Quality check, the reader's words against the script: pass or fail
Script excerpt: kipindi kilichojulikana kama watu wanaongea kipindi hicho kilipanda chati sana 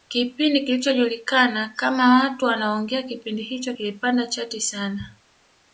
pass